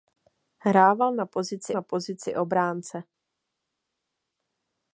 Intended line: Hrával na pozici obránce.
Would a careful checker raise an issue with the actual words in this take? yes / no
yes